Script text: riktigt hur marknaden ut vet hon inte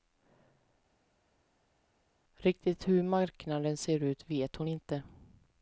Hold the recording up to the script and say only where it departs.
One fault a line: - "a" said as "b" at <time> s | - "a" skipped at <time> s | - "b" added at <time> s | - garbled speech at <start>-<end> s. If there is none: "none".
- "ser" added at 3.8 s